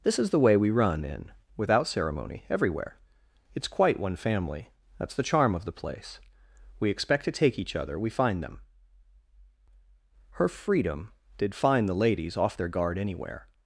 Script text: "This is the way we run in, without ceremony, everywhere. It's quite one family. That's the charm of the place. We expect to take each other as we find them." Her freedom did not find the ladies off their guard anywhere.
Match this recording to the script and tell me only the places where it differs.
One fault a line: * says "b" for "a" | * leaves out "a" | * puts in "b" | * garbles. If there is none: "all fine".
* leaves out "as"
* leaves out "not"